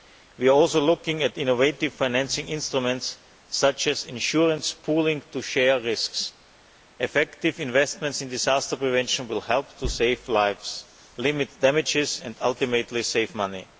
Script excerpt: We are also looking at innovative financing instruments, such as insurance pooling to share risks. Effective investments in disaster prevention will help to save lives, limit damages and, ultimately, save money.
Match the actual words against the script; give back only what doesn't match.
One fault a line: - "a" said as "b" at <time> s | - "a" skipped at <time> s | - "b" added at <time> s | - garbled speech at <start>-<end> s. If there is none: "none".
none